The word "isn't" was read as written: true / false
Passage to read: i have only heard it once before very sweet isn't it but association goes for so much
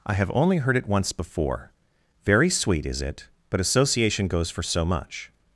false